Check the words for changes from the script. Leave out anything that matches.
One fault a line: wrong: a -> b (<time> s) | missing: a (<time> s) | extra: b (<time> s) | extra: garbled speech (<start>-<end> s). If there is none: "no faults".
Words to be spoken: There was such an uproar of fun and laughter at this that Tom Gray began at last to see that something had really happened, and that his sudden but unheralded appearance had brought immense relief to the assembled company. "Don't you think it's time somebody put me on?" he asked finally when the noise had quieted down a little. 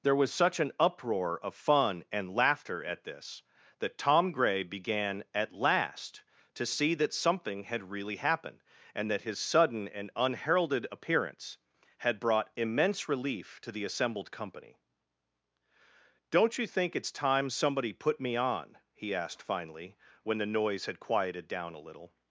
wrong: but -> and (9.9 s)